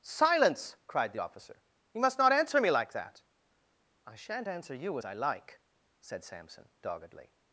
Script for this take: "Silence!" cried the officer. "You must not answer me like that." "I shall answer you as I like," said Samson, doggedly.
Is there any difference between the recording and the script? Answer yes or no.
yes